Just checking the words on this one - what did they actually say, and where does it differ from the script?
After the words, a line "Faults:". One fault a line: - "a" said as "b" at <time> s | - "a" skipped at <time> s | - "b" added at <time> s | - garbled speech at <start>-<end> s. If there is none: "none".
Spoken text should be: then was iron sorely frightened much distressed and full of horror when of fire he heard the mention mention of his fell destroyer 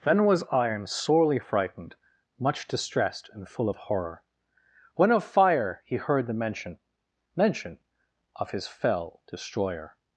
then was iron sorely frightened much distressed and full of horror when of fire he heard the mention mention of his fell destroyer
Faults:
none